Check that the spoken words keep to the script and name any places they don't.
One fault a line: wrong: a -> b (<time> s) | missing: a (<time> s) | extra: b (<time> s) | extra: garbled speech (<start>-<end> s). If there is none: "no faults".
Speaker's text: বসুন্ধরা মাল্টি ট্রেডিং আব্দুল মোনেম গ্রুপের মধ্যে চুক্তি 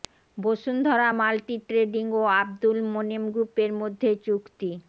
extra: ও (2.1 s)